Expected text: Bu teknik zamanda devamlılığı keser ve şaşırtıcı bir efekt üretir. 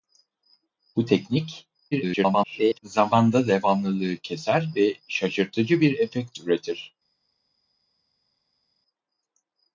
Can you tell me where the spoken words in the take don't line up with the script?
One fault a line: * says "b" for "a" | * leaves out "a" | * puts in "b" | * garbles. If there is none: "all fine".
* garbles